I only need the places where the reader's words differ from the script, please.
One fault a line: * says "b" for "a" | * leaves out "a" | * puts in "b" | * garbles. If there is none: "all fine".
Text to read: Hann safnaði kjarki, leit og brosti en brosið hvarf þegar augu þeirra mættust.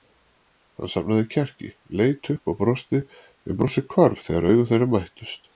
* puts in "upp"